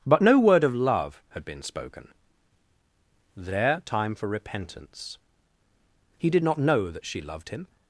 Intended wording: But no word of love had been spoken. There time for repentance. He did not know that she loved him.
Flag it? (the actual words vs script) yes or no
no